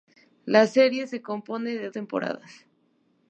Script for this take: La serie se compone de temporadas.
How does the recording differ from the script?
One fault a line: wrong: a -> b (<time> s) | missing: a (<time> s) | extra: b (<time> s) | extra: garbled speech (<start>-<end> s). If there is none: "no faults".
no faults